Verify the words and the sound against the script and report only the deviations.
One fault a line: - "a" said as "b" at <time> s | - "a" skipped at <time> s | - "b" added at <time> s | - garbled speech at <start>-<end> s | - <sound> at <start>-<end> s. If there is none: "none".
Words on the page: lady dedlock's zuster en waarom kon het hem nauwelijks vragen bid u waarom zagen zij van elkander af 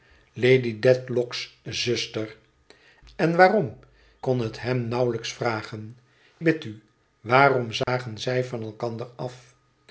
- dropout at 7.8-7.9 s